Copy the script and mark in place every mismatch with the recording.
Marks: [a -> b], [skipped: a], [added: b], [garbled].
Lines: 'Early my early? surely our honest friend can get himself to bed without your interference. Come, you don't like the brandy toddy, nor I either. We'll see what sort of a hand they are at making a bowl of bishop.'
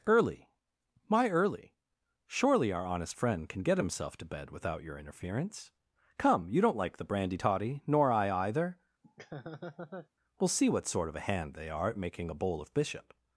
'Early my early? surely our honest friend can get himself to bed without your interference. Come, you don't like the brandy toddy, nor I either. We'll see what sort of a hand they are at making a bowl of bishop.'